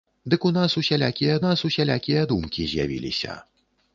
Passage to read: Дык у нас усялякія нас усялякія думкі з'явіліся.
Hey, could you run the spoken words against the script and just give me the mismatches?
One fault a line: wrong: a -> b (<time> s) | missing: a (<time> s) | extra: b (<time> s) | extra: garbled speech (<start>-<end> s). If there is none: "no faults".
no faults